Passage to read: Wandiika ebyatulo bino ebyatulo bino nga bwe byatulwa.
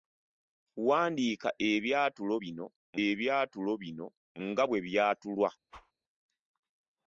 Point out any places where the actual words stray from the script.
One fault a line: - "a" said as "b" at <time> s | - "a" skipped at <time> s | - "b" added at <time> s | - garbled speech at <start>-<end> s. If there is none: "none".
none